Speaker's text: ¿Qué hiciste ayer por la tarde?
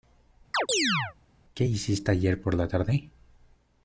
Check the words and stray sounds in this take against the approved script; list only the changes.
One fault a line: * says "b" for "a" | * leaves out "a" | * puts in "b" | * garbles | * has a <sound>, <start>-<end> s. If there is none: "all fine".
* has a chirp, 0.5-1.1 s